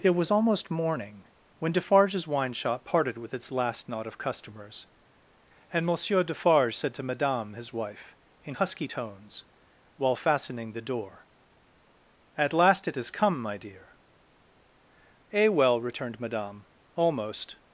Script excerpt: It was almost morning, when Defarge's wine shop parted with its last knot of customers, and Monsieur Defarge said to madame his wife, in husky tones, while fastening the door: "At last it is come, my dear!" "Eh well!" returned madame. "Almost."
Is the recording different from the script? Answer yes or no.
yes